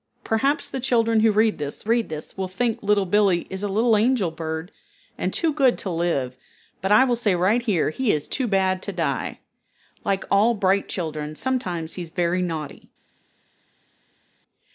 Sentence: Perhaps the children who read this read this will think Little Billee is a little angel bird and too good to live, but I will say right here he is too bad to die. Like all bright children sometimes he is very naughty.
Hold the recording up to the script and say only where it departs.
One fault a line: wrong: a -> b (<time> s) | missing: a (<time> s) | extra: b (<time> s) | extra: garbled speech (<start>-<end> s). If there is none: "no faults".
no faults